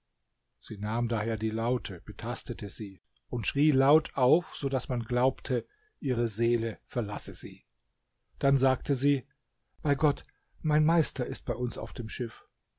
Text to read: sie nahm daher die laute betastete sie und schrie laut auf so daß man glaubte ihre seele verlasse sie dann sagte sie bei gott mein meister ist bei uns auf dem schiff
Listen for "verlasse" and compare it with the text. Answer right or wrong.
right